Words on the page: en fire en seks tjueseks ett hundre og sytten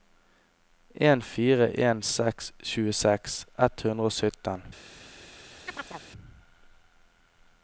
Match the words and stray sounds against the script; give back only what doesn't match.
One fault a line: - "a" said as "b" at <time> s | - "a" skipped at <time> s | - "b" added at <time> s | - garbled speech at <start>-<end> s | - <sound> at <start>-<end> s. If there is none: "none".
- chirp at 5.7-6.1 s